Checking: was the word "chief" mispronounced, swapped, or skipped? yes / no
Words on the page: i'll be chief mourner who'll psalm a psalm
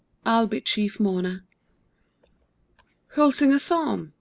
no